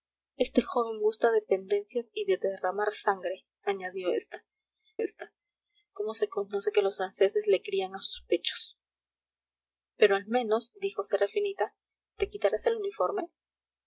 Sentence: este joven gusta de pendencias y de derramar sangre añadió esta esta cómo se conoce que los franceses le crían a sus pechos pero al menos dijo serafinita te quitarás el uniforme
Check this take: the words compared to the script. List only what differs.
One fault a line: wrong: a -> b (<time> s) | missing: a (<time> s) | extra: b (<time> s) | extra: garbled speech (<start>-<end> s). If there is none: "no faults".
no faults